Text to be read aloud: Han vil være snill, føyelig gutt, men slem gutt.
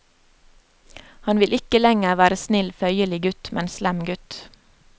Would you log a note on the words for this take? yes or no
yes